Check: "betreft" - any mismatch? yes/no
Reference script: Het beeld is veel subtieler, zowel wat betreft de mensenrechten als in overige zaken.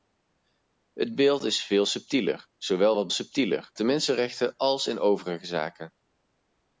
yes